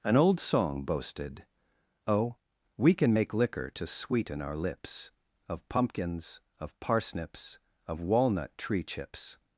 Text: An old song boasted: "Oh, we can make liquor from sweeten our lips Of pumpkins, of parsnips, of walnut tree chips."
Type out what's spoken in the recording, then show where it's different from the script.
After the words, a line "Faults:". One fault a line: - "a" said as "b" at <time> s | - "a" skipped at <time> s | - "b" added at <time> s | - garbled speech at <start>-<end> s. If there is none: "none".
An old song boasted: "Oh, we can make liquor to sweeten our lips Of pumpkins, of parsnips, of walnut tree chips."
Faults:
- "from" said as "to" at 3.7 s